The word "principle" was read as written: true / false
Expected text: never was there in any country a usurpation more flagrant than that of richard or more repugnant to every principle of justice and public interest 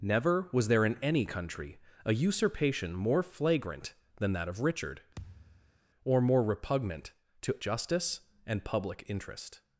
false